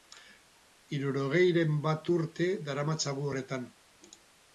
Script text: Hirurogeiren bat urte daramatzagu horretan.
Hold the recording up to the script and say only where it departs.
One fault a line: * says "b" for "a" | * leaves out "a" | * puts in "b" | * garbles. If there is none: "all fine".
all fine